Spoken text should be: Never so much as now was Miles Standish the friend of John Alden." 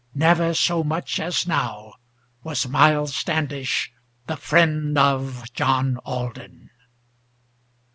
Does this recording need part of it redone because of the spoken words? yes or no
no